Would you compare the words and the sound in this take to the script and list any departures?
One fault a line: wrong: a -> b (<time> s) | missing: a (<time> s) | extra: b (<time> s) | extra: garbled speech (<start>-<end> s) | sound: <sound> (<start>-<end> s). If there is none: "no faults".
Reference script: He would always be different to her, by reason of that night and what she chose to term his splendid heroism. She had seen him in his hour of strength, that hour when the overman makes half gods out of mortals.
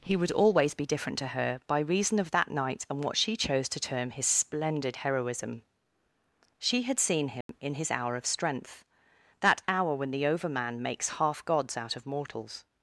sound: dropout (7.4-7.5 s)